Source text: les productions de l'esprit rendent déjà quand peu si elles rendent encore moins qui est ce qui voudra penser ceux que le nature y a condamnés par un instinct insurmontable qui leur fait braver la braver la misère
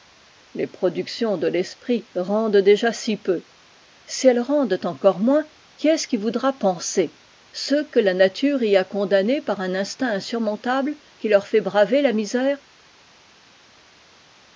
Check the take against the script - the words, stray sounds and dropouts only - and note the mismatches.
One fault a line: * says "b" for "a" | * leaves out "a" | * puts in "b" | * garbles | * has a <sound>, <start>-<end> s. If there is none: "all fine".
* says "si" for "quand"
* says "la" for "le"
* leaves out "braver la"